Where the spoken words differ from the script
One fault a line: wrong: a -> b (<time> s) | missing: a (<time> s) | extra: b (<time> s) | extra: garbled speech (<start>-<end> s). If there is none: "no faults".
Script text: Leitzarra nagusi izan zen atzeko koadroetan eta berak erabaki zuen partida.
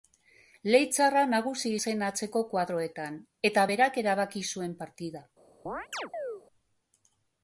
missing: izan (1.7 s)